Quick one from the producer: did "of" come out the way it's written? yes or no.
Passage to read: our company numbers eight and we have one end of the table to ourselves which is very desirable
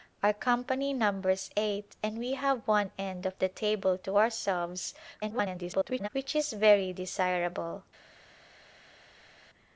yes